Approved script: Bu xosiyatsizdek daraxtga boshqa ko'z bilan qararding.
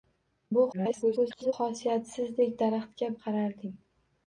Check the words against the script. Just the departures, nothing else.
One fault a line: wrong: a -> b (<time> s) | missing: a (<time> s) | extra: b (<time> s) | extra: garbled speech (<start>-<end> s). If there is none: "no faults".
extra: garbled speech (0.7-1.5 s)
missing: boshqa ko'z bilan (3.1 s)